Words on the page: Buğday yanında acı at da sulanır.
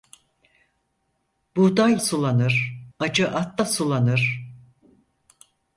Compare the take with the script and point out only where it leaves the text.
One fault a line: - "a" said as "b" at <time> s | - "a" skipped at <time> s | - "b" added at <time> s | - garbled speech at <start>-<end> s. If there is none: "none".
- "yanında" said as "sulanır" at 2.0 s